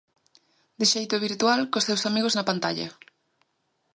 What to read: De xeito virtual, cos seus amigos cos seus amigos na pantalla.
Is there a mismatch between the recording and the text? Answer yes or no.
yes